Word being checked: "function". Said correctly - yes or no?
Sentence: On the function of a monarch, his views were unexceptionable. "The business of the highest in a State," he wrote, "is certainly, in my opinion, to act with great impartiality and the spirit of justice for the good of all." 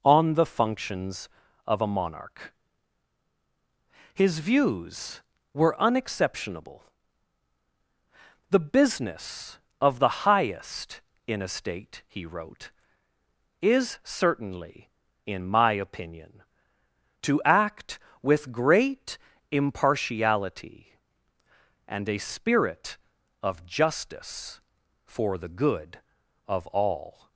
no